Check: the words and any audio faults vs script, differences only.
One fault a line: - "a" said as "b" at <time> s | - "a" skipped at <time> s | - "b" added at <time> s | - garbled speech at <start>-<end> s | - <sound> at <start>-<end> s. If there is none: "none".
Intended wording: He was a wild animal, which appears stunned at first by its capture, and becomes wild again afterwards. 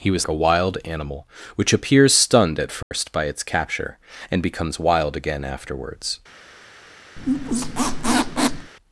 - dropout at 2.8-2.9 s
- squeak at 7.2-8.7 s